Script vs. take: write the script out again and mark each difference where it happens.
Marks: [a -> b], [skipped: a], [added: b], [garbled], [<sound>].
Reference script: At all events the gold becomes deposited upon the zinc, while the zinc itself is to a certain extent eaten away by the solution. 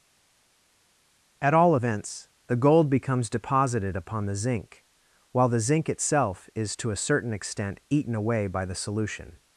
At all events the gold becomes deposited upon the zinc, while the zinc itself is to a certain extent eaten away by the solution.